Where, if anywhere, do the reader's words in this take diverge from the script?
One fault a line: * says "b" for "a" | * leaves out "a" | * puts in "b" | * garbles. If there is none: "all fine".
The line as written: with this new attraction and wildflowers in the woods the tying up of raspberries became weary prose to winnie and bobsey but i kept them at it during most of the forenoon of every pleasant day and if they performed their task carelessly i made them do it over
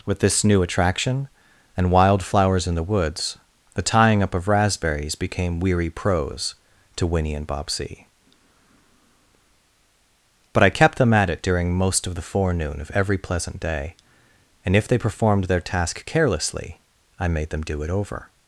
all fine